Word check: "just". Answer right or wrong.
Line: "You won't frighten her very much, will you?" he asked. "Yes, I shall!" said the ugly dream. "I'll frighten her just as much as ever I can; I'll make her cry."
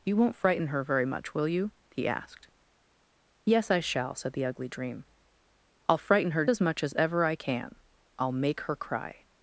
wrong